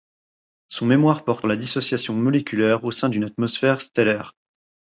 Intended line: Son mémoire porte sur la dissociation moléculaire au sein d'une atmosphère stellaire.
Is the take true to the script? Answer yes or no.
no